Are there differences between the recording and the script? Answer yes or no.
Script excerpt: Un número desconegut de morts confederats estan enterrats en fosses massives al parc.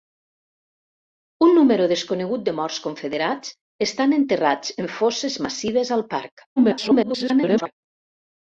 yes